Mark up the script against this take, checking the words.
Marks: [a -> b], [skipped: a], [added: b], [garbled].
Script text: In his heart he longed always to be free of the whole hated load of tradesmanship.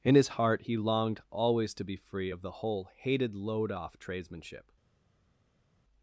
In his heart he longed always to be free of the whole hated load [of -> off] tradesmanship.